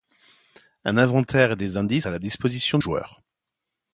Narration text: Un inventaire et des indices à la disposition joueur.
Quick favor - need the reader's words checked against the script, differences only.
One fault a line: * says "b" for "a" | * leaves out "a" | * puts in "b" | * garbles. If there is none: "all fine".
all fine